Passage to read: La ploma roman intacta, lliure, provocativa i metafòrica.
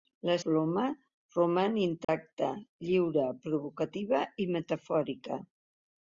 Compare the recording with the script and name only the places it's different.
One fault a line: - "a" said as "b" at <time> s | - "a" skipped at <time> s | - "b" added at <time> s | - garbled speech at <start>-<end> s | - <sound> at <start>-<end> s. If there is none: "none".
- dropout at 2.0-2.1 s